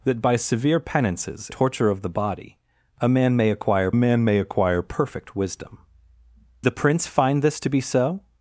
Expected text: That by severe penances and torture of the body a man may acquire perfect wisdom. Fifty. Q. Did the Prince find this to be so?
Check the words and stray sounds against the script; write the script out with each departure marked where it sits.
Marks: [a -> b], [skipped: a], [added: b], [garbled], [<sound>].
That by severe penances [skipped: and] torture of the body a man may acquire [perfect wisdom. Fifty. Q. Did -> man may acquire perfect wisdom] the Prince find this to be so?